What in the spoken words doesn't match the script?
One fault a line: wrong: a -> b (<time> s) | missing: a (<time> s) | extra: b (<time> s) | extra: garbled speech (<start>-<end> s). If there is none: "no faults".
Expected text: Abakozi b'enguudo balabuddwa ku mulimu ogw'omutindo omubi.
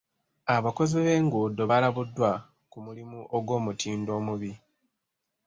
no faults